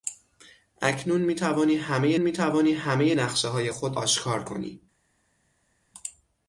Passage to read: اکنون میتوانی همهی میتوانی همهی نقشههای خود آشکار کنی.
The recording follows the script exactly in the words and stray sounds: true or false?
true